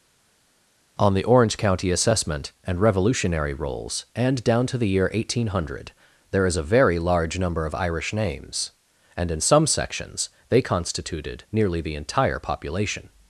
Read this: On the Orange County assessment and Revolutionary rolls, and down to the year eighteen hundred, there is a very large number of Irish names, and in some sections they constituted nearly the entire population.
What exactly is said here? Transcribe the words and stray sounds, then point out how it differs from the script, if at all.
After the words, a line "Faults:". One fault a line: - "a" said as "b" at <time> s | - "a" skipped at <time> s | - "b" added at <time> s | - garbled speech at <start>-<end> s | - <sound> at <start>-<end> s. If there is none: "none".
On the Orange County assessment and Revolutionary rolls, and down to the year eighteen hundred, there is a very large number of Irish names, and in some sections they constituted nearly the entire population.
Faults:
none